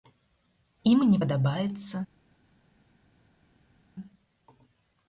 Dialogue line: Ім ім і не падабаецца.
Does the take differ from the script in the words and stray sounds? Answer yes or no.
yes